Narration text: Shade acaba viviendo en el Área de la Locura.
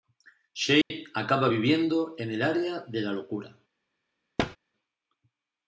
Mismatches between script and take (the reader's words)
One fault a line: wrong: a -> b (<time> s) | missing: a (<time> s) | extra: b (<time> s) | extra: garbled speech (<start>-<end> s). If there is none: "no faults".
no faults